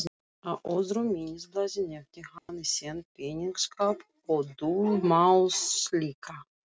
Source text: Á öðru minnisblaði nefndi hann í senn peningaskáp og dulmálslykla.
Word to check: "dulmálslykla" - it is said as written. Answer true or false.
true